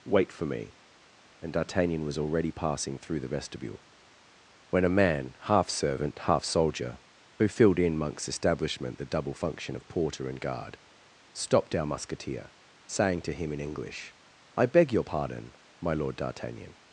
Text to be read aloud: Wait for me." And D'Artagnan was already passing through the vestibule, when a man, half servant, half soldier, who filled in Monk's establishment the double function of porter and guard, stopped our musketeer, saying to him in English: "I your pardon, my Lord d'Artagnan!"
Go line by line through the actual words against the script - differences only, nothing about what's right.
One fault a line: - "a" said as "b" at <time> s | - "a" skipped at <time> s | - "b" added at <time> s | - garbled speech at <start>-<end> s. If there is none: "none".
- "beg" added at 14.6 s